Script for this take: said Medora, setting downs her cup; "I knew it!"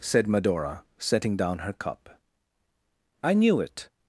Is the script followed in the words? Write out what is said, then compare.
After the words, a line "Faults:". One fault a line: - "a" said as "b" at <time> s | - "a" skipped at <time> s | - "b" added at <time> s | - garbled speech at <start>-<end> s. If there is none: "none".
said Medora, setting down her cup; "I knew it!"
Faults:
- "downs" said as "down" at 1.4 s